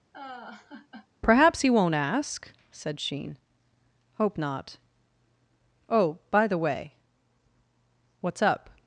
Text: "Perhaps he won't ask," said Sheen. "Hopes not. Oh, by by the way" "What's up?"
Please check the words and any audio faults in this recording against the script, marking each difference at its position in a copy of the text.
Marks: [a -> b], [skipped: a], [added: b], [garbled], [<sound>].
[laugh] "Perhaps he won't ask," said Sheen. ["Hopes -> Hope] not. Oh, by [skipped: by] the way" "What's up?"